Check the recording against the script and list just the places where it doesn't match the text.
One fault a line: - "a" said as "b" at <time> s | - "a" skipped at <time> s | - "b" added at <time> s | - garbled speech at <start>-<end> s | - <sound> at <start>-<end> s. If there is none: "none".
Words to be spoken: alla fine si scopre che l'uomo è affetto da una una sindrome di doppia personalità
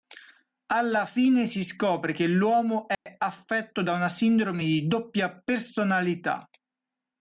- dropout at 2.9-3.1 s
- "una" skipped at 4.1 s